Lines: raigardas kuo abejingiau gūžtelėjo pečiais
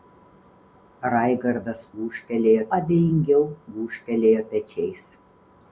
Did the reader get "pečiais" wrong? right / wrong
right